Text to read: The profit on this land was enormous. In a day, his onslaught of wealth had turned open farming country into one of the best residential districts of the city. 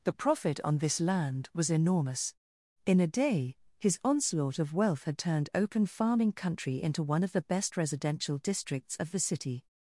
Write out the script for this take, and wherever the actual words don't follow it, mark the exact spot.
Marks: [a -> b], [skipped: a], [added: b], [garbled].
The profit on this land was enormous. In a day, his onslaught of wealth had turned open farming country into one of the best residential districts of the city.